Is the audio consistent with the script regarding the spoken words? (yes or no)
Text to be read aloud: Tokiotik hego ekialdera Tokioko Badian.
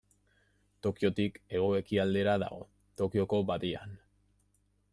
no